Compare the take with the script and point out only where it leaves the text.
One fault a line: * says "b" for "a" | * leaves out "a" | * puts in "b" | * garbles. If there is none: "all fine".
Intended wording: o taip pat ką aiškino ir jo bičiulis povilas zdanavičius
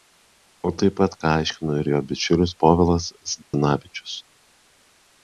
all fine